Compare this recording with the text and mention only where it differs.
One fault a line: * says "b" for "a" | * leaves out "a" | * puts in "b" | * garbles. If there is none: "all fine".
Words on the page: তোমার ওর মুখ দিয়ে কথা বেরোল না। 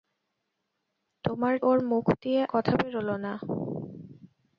all fine